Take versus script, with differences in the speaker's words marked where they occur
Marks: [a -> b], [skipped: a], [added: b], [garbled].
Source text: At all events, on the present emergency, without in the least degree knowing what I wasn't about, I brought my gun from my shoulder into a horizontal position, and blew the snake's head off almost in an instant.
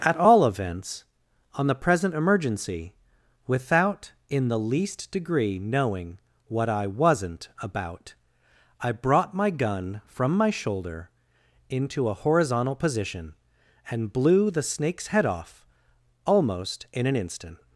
At all events, on the present emergency, without in the least degree knowing what I wasn't about, I brought my gun from my shoulder into a horizontal position, and blew the snake's head off almost in an instant.